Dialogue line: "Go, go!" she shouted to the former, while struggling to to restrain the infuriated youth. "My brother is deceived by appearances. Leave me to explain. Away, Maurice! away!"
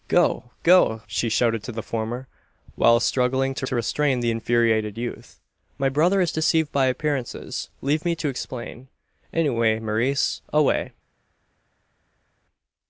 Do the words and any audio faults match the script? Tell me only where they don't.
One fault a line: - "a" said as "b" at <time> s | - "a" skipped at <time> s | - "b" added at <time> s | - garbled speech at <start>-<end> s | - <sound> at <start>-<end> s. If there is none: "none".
none